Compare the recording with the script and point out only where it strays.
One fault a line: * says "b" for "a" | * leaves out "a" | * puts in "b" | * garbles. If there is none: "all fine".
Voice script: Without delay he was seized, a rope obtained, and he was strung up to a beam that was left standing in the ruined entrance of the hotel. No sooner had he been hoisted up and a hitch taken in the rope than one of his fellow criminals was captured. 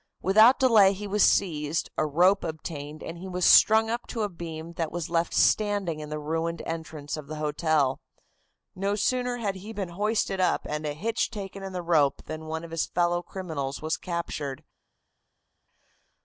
all fine